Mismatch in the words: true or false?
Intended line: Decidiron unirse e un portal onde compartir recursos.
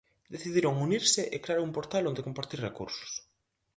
true